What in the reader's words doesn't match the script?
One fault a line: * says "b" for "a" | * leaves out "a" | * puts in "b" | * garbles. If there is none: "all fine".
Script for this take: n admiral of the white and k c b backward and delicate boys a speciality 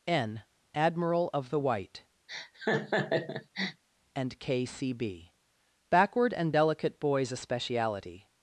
all fine